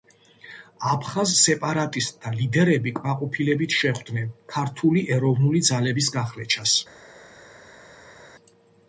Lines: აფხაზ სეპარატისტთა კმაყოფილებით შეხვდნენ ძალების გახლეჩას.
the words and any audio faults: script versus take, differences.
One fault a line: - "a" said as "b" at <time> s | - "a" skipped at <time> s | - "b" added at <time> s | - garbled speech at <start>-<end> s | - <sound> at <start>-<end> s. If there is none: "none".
- "ლიდერები" added at 2.4 s
- "ქართული ეროვნული" added at 4.5 s